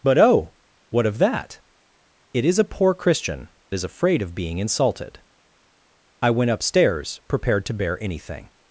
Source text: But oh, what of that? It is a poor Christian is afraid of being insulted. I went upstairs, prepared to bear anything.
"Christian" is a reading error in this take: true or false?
false